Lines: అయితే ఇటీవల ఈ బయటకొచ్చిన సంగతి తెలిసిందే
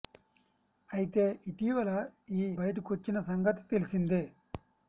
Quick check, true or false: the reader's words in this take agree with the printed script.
true